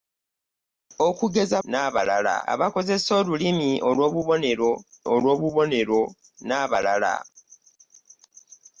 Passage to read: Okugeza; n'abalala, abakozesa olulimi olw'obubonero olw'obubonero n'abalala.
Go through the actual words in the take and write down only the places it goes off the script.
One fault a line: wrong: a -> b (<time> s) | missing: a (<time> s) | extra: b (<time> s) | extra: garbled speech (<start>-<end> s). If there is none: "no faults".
no faults